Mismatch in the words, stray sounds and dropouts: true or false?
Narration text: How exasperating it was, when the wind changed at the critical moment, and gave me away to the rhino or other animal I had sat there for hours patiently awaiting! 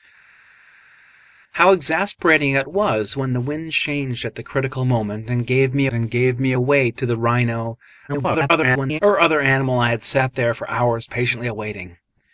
true